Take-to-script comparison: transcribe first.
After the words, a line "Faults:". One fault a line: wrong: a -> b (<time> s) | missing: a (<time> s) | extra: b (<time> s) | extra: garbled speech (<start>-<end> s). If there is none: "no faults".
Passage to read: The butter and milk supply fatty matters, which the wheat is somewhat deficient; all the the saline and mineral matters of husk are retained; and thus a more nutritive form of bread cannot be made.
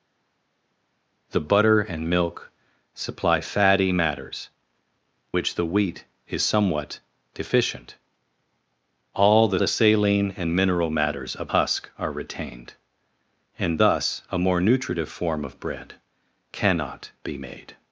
The butter and milk supply fatty matters, which the wheat is somewhat deficient; all the the saline and mineral matters of husk are retained; and thus a more nutritive form of bread cannot be made.
Faults:
no faults